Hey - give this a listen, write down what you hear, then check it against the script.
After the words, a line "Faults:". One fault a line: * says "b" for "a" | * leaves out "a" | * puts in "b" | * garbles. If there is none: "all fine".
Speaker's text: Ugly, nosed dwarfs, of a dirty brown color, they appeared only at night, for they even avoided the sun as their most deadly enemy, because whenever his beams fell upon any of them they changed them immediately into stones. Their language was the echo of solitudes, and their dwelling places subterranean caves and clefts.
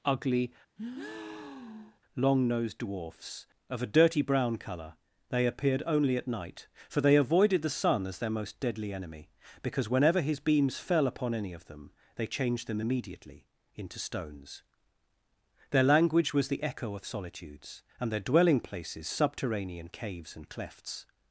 Ugly, long nosed dwarfs, of a dirty brown color, they appeared only at night, for they avoided the sun as their most deadly enemy, because whenever his beams fell upon any of them they changed them immediately into stones. Their language was the echo of solitudes, and their dwelling places subterranean caves and clefts.
Faults:
* puts in "long"
* leaves out "even"